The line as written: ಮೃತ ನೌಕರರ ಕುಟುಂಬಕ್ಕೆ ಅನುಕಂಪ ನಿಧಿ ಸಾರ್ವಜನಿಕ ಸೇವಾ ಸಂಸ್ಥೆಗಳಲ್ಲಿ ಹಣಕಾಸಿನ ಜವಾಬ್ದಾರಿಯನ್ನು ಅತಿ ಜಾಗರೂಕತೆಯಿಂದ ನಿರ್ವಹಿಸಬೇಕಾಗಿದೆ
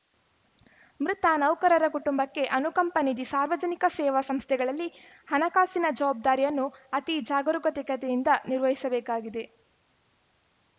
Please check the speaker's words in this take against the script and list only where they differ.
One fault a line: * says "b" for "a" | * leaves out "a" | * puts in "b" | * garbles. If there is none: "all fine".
all fine